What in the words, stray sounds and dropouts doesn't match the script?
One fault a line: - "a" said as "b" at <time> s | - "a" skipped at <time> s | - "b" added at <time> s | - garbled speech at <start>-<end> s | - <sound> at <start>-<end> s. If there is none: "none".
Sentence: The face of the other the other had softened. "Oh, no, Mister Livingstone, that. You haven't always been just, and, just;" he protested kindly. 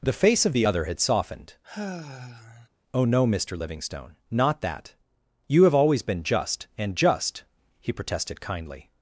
- "the other" skipped at 0.8 s
- sigh at 1.6-2.7 s
- "not" added at 4.3 s
- "haven't" said as "have" at 5.6 s